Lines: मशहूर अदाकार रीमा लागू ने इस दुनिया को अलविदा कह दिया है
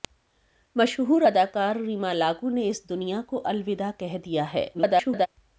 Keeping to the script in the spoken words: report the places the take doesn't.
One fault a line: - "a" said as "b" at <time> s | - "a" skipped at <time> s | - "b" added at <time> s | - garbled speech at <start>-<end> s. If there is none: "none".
- garbled speech at 4.7-5.3 s